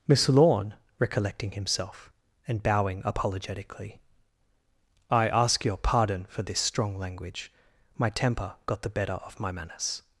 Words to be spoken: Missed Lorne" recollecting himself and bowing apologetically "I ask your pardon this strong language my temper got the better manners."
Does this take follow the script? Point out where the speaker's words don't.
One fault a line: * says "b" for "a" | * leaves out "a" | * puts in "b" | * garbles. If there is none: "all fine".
* says "Miss" for "Missed"
* puts in "for"
* puts in "of my"